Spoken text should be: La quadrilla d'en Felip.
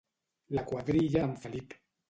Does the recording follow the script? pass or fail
pass